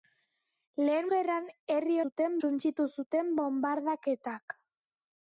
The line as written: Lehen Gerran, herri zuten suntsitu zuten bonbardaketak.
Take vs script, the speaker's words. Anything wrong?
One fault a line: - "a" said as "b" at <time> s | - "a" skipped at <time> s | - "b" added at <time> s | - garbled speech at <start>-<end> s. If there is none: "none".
none